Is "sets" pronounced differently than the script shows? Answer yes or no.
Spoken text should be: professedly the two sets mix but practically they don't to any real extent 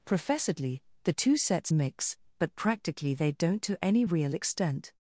no